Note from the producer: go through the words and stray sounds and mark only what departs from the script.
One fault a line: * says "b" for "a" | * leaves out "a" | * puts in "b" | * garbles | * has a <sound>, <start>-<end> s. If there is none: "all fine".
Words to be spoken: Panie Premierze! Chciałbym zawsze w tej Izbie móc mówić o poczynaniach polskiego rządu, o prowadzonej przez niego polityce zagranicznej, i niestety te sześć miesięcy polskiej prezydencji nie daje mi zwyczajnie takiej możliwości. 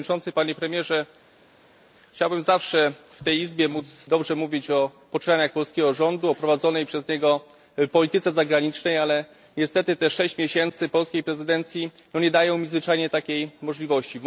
* puts in "dobrze"
* says "ale" for "i"